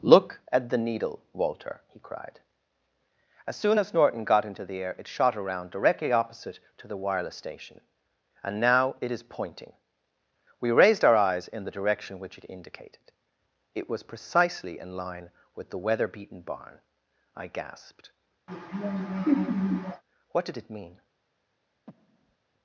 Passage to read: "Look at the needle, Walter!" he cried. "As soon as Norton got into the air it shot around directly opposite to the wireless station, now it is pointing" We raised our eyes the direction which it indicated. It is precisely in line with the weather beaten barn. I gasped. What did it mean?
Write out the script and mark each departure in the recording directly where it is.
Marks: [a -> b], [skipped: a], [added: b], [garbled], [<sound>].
"Look at the needle, Walter!" he cried. "As soon as Norton got into the air it shot around directly opposite to the wireless station, [added: and] now it is pointing" We raised our eyes [added: in] the direction which it indicated. It [is -> was] precisely in line with the weather beaten barn. I gasped. [laugh] What did it mean? [breath]